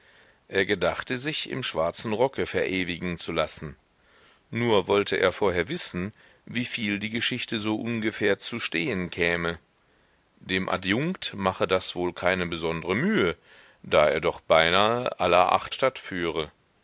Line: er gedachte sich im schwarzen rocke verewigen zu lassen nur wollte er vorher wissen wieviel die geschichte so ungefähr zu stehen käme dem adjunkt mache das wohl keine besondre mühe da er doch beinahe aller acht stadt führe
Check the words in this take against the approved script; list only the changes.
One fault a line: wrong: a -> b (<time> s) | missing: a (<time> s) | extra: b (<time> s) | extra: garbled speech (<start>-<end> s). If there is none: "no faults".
no faults